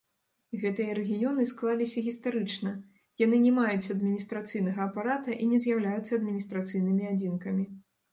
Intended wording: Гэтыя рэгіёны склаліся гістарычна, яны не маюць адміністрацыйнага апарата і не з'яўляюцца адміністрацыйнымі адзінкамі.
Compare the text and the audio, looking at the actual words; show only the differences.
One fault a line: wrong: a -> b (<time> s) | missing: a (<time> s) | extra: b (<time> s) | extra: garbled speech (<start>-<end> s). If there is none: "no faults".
no faults